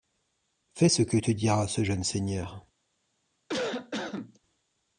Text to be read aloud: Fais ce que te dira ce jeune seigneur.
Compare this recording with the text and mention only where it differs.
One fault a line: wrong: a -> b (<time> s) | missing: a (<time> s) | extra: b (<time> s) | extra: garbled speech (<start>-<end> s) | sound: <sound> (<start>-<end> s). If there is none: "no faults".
sound: cough (3.5-4.4 s)